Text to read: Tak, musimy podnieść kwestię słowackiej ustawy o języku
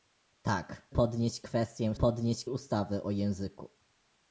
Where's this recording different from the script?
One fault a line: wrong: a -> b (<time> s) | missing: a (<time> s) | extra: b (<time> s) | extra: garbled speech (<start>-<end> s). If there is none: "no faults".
missing: musimy (0.9 s)
wrong: słowackiej -> podnieść (1.9 s)